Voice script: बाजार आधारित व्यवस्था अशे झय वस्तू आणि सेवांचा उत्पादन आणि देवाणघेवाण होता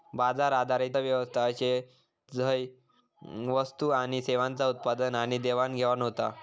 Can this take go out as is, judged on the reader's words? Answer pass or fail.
pass